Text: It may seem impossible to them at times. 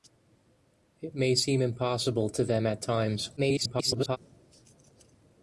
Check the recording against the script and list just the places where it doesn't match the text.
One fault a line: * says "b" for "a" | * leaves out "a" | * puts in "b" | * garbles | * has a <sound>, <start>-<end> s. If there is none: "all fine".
* garbles